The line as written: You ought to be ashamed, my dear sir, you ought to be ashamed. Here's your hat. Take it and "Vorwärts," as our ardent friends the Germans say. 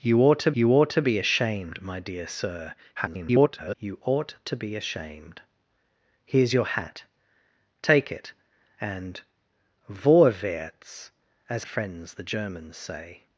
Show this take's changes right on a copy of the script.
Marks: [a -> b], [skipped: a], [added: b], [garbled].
You ought to [added: you ought to] be ashamed, my dear sir, [garbled] you ought to be ashamed. Here's your hat. Take it and "Vorwärts," as [skipped: our ardent] friends the Germans say.